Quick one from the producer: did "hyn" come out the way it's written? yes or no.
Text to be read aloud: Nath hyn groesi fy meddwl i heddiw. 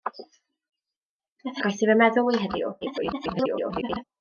no